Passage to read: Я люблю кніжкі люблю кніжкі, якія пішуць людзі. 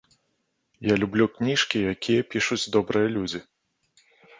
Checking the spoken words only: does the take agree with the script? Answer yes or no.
no